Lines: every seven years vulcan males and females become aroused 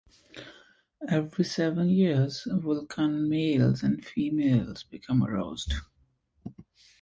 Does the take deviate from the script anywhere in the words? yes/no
no